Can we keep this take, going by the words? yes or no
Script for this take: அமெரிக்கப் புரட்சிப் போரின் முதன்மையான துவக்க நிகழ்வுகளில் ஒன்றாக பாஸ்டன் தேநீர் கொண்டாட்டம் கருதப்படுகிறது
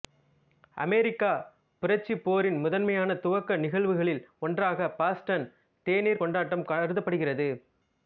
yes